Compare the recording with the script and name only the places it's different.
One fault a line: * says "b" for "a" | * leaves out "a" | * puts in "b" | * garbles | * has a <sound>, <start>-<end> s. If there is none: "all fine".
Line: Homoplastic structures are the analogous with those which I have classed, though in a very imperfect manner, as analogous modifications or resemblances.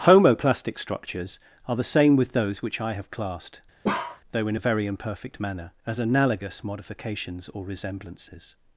* says "same" for "analogous"
* has a bark, 3.8-4.2 s